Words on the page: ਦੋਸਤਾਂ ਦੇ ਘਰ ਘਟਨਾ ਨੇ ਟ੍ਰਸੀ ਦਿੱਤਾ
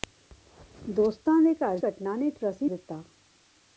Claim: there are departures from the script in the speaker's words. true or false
false